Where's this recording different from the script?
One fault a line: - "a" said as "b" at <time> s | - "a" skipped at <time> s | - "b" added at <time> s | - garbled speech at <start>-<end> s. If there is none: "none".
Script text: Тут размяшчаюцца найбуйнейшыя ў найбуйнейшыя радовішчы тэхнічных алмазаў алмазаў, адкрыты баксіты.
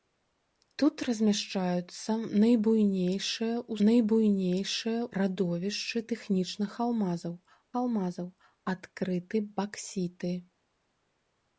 none